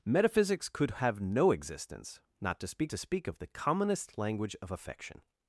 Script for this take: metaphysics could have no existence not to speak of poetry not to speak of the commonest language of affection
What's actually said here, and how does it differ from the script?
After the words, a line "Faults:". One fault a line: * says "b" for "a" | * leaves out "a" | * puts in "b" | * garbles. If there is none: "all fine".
metaphysics could have no existence not to speak to speak of the commonest language of affection
Faults:
* leaves out "of poetry not"